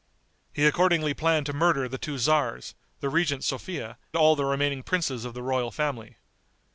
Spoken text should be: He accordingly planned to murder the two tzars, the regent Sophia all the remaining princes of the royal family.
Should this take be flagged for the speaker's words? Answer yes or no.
no